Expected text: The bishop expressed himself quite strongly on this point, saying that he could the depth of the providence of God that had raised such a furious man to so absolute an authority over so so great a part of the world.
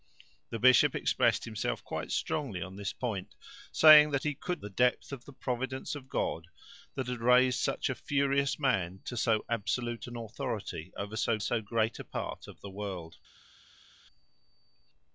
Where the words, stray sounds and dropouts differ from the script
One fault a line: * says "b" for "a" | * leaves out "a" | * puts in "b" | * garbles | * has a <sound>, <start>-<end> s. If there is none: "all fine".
all fine